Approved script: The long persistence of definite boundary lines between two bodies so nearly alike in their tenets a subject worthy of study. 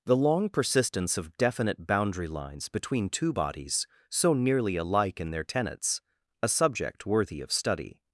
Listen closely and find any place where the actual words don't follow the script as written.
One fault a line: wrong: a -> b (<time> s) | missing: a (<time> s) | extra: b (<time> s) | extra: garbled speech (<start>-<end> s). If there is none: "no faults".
no faults